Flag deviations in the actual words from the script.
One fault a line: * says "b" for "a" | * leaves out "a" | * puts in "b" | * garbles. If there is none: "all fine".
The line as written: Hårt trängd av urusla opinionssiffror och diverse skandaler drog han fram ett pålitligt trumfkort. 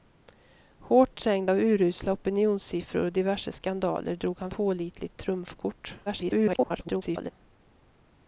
* leaves out "fram ett"
* garbles